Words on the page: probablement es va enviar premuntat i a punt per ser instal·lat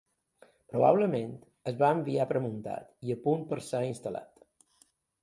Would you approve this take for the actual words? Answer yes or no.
yes